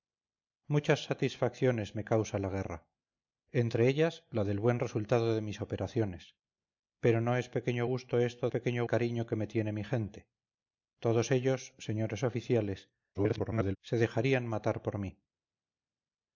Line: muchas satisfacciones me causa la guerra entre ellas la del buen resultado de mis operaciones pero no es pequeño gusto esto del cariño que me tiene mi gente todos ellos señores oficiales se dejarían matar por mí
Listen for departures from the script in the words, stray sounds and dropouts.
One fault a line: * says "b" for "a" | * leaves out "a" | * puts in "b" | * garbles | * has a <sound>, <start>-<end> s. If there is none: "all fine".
* says "pequeño" for "del"
* garbles